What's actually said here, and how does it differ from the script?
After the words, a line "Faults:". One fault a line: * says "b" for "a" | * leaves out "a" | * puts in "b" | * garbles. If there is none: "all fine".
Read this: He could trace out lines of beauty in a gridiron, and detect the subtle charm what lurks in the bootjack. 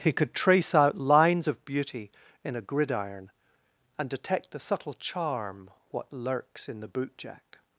He could trace out lines of beauty in a gridiron, and detect the subtle charm what lurks in the bootjack.
Faults:
all fine